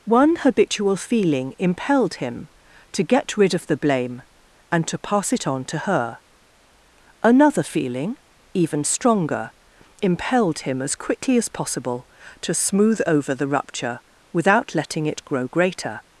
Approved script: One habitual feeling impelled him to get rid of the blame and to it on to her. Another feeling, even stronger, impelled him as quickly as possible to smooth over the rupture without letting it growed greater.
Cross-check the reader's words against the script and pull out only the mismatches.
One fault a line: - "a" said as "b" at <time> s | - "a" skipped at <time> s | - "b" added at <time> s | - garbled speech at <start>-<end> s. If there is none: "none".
- "pass" added at 5.0 s
- "growed" said as "grow" at 15.2 s